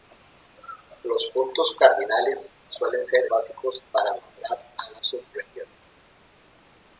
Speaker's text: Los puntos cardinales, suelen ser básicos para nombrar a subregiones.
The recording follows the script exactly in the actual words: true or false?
true